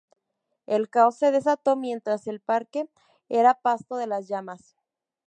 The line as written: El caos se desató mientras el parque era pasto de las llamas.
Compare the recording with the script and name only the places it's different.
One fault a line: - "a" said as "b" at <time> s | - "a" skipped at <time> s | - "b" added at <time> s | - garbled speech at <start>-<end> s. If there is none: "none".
none